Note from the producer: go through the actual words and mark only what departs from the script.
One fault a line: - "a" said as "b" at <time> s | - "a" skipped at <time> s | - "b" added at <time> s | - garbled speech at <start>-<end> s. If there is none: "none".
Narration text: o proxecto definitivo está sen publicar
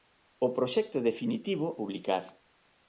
- "está sen" skipped at 1.7 s